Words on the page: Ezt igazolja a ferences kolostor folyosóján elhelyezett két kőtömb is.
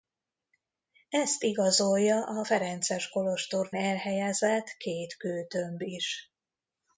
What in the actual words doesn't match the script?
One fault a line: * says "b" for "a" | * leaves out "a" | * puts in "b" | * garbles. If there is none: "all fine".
* leaves out "folyosóján"